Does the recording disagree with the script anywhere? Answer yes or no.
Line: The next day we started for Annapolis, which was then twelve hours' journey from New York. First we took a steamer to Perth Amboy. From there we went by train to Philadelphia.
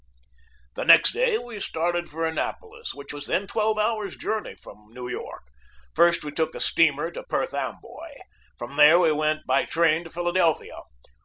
no